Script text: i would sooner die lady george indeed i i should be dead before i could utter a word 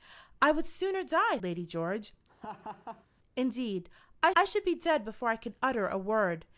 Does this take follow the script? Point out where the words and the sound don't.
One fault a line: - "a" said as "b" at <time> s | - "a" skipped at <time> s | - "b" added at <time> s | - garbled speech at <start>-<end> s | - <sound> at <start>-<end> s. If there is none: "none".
- laugh at 2.3-3.1 s